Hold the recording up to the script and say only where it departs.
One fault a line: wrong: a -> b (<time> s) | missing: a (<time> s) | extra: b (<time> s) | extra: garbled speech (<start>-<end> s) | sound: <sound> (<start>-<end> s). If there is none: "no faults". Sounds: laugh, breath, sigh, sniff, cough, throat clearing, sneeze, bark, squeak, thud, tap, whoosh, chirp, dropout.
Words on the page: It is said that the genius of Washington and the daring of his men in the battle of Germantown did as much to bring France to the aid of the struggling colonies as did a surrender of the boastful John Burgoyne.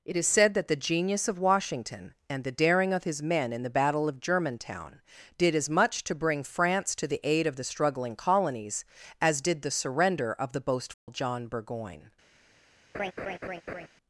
wrong: a -> the (9.6 s)
sound: dropout (10.9-11.1 s)
sound: laugh (12.9-13.9 s)